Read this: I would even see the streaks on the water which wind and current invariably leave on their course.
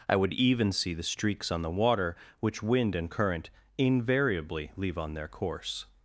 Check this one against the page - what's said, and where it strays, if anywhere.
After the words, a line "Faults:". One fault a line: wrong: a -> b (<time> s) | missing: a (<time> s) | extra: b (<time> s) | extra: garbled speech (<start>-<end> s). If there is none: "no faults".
I would even see the streaks on the water which wind and current invariably leave on their course.
Faults:
no faults